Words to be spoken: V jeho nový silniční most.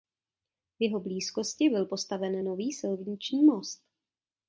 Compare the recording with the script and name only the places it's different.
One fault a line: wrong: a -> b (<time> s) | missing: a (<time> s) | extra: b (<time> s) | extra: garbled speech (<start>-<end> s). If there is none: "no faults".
extra: blízkosti byl postaven (1.0 s)